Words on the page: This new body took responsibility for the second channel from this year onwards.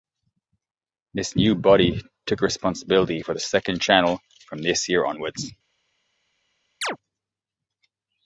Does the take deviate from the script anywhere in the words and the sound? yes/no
yes